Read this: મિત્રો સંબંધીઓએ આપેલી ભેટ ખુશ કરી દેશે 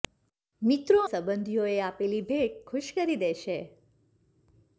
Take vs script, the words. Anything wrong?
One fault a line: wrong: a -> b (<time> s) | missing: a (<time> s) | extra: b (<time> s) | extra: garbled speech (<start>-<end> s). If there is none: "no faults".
no faults